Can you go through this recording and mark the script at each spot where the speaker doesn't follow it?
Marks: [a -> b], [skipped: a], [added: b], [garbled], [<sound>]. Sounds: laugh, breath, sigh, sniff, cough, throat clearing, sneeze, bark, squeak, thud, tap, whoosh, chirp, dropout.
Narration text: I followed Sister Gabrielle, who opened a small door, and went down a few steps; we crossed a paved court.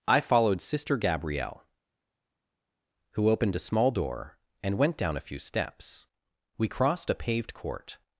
I followed Sister Gabrielle, who opened a small door, and went down a few steps; we crossed a paved court.